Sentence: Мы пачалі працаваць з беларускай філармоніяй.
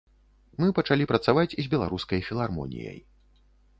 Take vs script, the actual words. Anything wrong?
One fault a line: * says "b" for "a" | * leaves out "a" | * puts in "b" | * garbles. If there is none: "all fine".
all fine